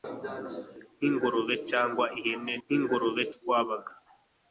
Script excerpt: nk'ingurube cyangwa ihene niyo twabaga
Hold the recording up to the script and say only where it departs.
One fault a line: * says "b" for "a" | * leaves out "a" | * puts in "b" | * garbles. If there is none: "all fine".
* says "nk'ingurube" for "niyo"